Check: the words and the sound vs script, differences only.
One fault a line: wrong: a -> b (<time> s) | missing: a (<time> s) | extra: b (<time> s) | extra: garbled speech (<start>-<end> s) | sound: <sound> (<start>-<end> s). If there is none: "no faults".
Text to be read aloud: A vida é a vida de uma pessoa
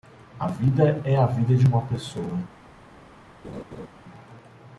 sound: laugh (3.4-3.9 s)